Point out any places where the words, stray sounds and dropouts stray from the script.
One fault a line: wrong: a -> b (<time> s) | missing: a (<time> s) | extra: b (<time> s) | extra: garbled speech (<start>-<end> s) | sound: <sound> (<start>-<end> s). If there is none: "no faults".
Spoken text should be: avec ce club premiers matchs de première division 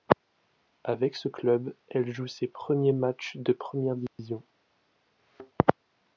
extra: elle joue ses (1.9 s)
sound: dropout (4.1-4.2 s)
sound: thud (5.2-5.5 s)